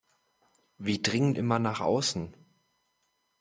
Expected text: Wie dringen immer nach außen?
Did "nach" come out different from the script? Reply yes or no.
no